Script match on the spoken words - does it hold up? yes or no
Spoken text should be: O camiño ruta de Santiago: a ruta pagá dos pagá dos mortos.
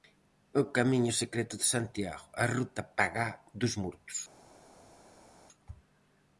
no